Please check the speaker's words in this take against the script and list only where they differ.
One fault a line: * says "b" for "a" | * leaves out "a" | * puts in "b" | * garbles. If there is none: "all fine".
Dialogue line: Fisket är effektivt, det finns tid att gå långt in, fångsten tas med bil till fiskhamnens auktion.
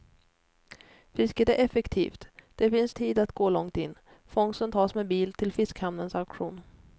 all fine